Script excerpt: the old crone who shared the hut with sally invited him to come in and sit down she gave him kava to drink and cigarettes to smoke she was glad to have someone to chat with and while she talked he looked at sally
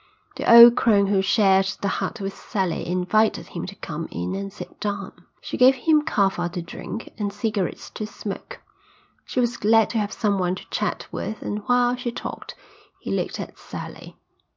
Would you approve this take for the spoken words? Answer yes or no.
yes